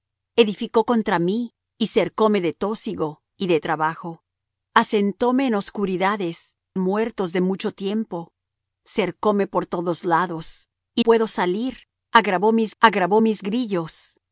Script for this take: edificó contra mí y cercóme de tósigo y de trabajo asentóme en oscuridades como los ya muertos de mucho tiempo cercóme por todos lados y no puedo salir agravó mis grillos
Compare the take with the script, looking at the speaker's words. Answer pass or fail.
fail